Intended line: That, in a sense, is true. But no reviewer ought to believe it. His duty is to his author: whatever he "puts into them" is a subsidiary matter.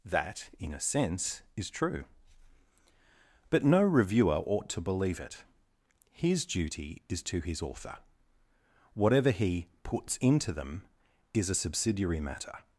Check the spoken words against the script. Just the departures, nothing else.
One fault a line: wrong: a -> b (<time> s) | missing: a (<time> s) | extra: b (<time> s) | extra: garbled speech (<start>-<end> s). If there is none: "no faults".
no faults